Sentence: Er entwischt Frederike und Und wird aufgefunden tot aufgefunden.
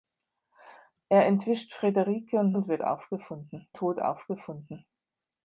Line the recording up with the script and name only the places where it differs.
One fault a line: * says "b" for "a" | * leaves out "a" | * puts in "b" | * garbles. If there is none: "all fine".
all fine